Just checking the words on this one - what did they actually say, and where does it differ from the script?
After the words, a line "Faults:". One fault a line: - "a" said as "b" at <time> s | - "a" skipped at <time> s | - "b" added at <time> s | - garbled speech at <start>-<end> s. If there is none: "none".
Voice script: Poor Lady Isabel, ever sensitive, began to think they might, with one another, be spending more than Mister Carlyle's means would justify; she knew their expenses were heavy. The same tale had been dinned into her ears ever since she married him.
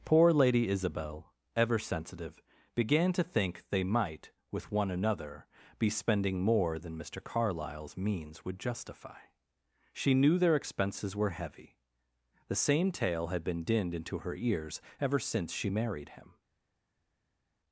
Poor Lady Isabel, ever sensitive, began to think they might, with one another, be spending more than Mister Carlyle's means would justify; she knew their expenses were heavy. The same tale had been dinned into her ears ever since she married him.
Faults:
none